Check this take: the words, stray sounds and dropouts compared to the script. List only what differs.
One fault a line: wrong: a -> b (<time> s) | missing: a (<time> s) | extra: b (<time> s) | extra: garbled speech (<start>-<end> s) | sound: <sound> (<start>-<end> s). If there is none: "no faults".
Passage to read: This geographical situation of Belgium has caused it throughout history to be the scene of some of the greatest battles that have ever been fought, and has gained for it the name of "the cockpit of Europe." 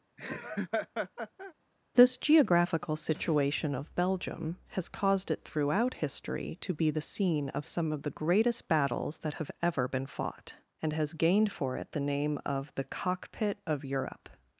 sound: laugh (0.2-1.5 s)